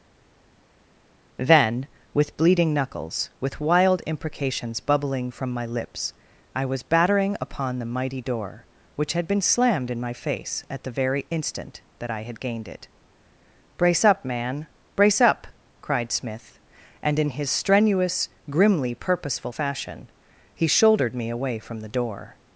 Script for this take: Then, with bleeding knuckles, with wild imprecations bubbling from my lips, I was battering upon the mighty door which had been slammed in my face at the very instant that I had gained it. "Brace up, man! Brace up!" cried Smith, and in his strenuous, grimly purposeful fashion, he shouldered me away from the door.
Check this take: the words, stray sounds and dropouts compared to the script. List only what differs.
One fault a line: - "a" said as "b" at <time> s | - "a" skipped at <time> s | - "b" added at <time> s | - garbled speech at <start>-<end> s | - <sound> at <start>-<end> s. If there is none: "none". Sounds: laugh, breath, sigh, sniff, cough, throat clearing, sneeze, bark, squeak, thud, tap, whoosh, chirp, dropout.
none